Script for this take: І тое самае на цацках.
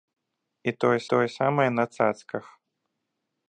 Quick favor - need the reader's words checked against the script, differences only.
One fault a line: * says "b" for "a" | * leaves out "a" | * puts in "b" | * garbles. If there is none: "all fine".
* puts in "тое"